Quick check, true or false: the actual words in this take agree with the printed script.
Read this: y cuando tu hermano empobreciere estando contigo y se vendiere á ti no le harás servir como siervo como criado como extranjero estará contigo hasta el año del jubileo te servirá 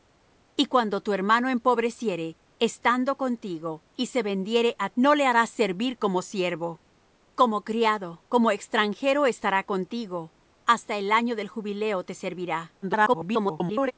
false